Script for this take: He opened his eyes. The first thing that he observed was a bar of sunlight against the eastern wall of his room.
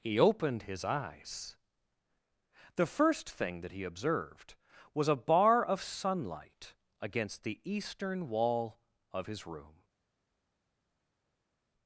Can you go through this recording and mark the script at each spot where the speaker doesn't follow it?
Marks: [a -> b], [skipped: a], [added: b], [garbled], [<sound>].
He opened his eyes. The first thing that he observed was a bar of sunlight against the eastern wall of his room.